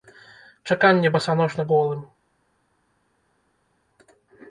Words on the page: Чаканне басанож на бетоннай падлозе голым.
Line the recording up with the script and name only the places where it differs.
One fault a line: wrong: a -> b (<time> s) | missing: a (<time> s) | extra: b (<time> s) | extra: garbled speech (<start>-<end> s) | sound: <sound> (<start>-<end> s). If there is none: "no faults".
missing: бетоннай падлозе (1.7 s)